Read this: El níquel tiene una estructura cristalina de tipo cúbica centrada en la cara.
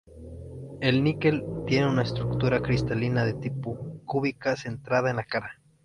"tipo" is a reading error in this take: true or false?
false